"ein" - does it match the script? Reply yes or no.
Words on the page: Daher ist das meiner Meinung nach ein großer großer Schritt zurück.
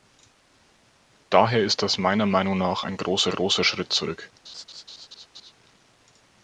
yes